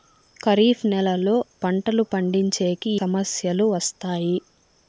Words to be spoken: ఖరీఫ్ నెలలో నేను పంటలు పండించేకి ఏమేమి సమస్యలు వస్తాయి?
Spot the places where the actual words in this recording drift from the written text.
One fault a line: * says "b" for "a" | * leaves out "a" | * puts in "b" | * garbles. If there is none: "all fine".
* leaves out "నేను"
* leaves out "ఏమేమి"